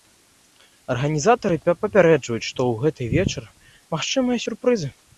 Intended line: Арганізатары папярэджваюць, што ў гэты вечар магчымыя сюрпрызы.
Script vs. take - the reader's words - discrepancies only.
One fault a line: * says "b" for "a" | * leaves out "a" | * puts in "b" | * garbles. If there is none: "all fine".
all fine